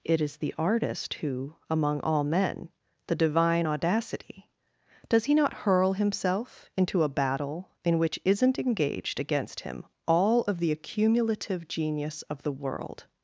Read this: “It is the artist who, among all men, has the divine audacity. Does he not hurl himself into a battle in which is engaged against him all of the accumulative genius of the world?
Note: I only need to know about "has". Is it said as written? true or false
false